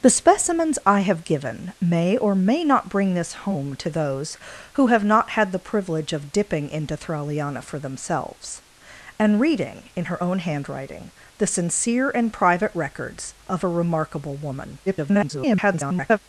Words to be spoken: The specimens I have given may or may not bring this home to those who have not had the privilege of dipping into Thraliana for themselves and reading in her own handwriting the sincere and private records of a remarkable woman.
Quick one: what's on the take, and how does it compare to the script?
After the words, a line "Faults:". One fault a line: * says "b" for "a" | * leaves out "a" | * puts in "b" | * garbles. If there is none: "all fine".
The specimens I have given may or may not bring this home to those who have not had the privilege of dipping into Thraliana for themselves and reading in her own handwriting the sincere and private records of a remarkable woman. [garbled]
Faults:
* garbles